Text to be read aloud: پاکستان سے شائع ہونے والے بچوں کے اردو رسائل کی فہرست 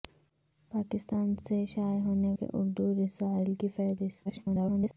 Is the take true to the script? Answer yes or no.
no